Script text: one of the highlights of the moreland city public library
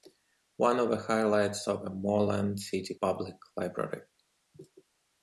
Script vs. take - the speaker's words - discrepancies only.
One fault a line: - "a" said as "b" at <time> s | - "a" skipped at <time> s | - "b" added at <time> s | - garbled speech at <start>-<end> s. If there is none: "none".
none